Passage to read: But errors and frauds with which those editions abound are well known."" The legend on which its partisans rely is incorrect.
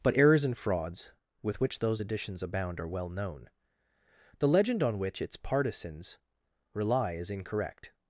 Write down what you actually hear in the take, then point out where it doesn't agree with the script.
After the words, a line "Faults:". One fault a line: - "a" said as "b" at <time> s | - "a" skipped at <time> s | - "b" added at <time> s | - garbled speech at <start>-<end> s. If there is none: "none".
But errors and frauds with which those editions abound are well known."" The legend on which its partisans rely is incorrect.
Faults:
none